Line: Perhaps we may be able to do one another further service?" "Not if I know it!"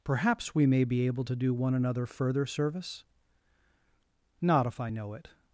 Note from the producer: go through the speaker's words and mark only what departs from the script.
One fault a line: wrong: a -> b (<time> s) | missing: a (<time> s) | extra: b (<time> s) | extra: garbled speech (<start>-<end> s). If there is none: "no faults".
no faults